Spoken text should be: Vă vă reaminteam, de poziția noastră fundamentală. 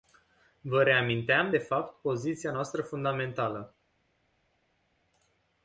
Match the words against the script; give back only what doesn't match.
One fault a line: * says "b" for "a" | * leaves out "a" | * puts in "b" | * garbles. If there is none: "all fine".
* leaves out "vă"
* puts in "fapt"